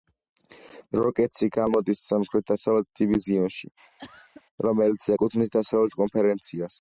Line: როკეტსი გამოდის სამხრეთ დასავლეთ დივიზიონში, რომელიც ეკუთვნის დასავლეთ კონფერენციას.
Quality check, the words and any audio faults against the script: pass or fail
fail